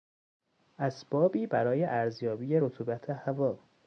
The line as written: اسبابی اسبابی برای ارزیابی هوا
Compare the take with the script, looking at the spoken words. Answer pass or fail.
fail